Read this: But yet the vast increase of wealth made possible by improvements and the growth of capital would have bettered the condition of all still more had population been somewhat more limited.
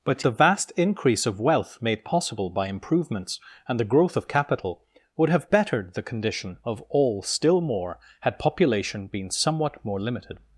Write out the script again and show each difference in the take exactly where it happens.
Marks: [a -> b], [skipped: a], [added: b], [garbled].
But [skipped: yet] the vast increase of wealth made possible by improvements and the growth of capital would have bettered the condition of all still more had population been somewhat more limited.